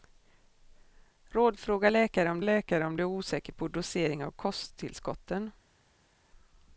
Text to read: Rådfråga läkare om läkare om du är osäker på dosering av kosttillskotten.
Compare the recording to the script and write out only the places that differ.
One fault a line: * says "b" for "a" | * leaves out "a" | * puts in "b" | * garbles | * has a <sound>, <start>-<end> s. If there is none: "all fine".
all fine